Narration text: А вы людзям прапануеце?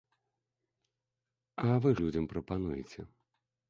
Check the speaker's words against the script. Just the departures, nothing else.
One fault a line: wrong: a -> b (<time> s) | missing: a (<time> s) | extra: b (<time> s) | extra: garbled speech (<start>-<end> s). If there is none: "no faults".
no faults